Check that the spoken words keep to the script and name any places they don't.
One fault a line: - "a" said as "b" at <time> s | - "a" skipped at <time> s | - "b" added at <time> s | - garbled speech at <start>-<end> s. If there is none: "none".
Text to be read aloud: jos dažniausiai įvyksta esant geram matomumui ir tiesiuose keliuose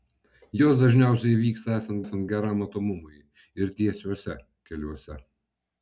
- "esant" added at 2.0 s